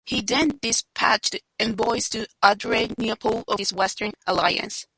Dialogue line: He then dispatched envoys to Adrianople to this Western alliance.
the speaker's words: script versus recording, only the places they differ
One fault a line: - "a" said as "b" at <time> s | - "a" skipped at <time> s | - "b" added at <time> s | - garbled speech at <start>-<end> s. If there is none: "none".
none